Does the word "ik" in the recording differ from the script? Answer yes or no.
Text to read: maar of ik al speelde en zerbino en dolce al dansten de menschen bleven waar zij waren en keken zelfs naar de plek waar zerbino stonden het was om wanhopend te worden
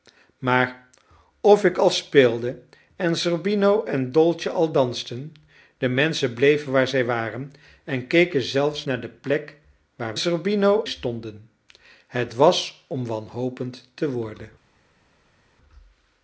no